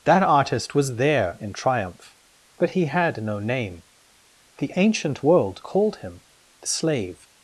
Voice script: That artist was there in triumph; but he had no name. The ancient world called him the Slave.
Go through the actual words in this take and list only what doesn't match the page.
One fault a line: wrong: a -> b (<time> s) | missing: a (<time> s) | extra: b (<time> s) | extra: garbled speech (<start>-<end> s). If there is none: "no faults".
no faults